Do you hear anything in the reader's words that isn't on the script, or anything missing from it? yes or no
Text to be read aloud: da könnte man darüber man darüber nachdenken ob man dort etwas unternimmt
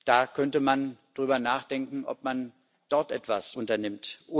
yes